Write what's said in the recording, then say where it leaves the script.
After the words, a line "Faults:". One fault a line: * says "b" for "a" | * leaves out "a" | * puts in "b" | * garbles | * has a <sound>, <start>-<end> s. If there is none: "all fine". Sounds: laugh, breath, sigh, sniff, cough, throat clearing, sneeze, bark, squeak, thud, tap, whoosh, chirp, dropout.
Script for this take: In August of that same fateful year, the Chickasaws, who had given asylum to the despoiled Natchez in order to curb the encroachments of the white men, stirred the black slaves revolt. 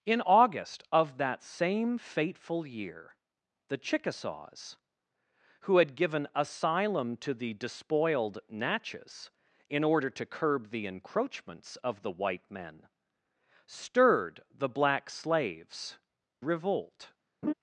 In August of that same fateful year, the Chickasaws, who had given asylum to the despoiled Natchez in order to curb the encroachments of the white men, stirred the black slaves revolt.
Faults:
* has a laugh, 17.4-17.5 s